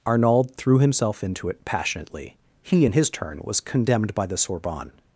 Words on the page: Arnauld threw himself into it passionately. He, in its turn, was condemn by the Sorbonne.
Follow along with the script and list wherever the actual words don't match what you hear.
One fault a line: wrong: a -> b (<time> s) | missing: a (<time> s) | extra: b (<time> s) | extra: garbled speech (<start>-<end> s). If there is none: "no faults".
wrong: its -> his (2.9 s)
wrong: condemn -> condemned (3.6 s)